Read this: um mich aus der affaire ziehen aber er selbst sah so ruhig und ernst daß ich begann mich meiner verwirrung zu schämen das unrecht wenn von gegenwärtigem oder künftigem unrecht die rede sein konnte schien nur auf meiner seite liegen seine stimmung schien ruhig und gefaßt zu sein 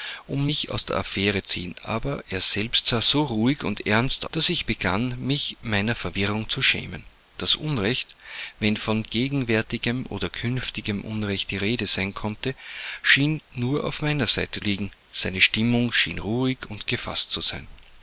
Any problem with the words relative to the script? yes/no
no